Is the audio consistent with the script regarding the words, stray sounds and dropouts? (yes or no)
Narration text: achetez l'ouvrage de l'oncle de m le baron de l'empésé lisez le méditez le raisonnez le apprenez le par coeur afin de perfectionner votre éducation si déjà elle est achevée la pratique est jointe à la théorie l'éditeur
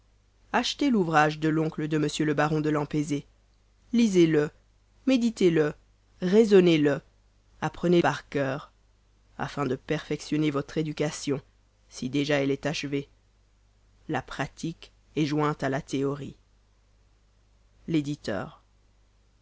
no